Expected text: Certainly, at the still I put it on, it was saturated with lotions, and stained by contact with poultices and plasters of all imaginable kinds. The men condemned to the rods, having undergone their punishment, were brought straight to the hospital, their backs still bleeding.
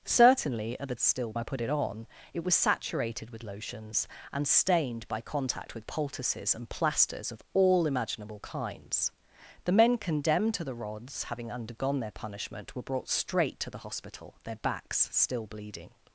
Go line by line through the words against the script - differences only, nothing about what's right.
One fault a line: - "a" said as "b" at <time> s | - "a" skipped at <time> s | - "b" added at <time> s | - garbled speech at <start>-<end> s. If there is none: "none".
none